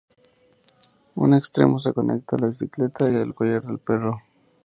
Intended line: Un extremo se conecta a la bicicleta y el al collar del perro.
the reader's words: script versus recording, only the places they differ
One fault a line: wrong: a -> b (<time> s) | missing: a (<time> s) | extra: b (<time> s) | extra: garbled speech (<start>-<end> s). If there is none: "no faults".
no faults